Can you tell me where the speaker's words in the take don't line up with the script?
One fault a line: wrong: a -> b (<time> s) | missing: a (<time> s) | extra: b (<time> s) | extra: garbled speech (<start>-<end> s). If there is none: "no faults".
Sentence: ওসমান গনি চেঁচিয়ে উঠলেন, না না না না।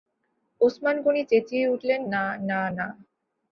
missing: না (2.9 s)